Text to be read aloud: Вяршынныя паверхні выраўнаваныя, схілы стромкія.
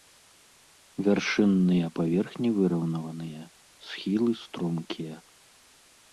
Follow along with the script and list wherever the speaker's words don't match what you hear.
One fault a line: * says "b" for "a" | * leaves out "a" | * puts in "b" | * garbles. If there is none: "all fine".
all fine